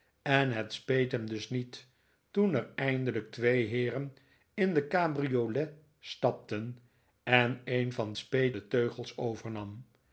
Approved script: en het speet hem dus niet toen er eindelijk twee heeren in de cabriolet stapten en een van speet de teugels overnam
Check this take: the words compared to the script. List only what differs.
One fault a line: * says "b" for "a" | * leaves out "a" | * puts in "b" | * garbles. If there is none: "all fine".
all fine